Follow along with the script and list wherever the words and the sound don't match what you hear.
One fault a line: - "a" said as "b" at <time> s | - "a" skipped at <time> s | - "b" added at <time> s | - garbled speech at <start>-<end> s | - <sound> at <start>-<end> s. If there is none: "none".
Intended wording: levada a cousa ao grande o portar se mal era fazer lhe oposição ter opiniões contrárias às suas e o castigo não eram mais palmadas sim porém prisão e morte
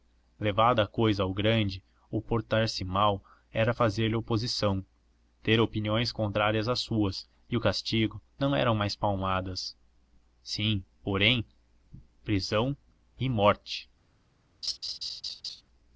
- laugh at 14.6-15.6 s